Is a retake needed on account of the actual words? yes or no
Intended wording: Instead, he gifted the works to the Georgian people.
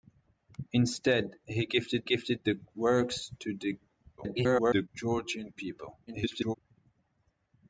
yes